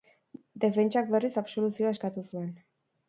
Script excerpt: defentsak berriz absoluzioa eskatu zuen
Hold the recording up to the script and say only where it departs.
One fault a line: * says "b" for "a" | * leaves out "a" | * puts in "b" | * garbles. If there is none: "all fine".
all fine